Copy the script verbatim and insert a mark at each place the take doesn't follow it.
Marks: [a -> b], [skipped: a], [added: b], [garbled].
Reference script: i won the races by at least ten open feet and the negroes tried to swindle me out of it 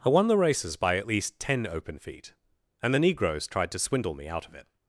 i won the races by at least ten open feet and the negroes tried to swindle me out of it